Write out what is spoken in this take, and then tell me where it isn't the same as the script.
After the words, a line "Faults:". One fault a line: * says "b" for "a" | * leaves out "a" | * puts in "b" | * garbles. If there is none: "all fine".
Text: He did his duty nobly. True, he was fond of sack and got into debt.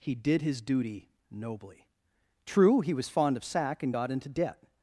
He did his duty nobly. True, he was fond of sack and got into debt.
Faults:
all fine